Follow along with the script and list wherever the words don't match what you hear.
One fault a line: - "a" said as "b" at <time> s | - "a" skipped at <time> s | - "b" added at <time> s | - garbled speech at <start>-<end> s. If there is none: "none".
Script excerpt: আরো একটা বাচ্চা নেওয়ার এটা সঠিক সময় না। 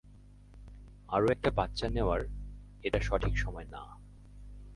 none